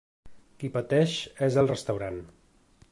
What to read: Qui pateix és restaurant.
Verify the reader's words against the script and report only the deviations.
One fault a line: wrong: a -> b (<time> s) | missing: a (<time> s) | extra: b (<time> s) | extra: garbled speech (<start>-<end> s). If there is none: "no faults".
extra: el (1.6 s)